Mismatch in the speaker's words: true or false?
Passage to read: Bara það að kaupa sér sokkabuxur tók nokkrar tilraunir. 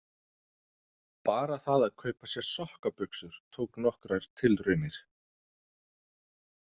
false